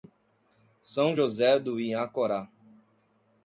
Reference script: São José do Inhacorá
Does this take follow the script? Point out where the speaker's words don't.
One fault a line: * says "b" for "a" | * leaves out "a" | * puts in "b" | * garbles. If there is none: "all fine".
all fine